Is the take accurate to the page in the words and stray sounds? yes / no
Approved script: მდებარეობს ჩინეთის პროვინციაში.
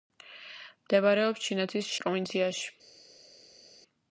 yes